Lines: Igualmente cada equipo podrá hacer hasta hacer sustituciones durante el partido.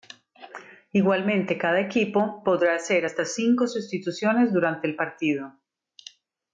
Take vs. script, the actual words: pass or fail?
fail